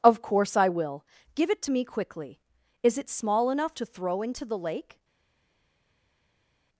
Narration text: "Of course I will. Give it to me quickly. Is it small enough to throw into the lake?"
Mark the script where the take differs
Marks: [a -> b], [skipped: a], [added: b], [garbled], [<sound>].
"Of course I will. Give it to me quickly. Is it small enough to throw into the lake?"